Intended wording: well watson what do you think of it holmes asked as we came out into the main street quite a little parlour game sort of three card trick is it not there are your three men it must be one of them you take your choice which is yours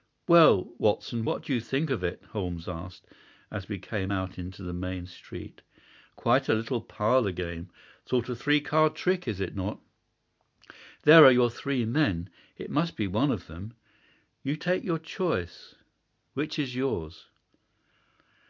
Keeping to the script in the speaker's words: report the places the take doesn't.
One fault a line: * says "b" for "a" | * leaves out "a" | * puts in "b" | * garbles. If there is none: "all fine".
all fine